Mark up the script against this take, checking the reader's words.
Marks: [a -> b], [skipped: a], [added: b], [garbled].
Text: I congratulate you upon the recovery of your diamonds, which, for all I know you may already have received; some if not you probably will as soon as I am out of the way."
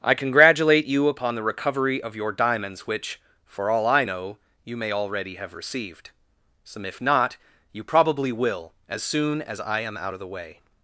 I congratulate you upon the recovery of your diamonds, which, for all I know you may already have received; some if not you probably will as soon as I am out of the way."